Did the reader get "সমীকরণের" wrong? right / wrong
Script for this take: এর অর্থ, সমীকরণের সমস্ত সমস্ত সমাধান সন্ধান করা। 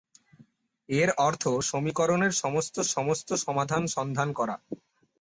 right